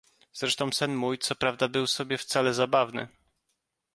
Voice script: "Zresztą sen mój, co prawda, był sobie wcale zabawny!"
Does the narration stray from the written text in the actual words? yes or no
no